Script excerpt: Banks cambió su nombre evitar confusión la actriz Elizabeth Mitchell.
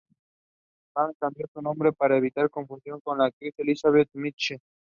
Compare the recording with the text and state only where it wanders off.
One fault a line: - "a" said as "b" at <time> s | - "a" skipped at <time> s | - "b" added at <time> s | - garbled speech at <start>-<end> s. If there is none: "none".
- "para" added at 1.9 s
- "con" added at 3.0 s